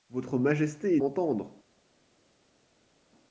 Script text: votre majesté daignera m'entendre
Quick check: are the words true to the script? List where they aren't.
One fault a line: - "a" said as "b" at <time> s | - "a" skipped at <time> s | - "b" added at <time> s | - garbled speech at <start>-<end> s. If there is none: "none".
- "daignera" skipped at 1.0 s